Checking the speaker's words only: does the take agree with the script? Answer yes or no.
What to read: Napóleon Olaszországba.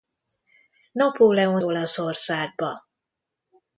yes